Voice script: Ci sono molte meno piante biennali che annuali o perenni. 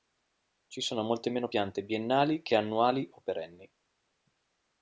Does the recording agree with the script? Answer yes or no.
yes